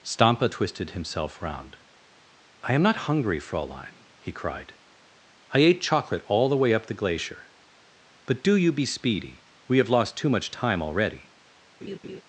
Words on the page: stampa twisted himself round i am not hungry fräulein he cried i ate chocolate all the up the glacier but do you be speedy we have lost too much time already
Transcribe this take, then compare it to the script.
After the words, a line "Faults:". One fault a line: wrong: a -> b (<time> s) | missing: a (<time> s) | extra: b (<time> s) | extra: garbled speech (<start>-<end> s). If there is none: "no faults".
stampa twisted himself round i am not hungry fräulein he cried i ate chocolate all the way up the glacier but do you be speedy we have lost too much time already
Faults:
extra: way (6.6 s)